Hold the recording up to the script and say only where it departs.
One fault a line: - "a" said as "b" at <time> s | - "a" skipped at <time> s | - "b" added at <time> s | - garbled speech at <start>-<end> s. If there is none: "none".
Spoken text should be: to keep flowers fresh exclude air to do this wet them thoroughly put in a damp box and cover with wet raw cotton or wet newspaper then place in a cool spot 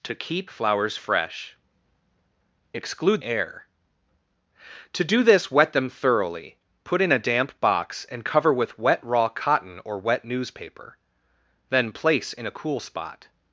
none